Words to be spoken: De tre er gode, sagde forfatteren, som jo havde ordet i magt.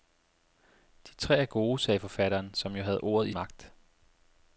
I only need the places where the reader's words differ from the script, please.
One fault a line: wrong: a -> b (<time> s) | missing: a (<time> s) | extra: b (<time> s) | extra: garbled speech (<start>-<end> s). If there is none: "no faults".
no faults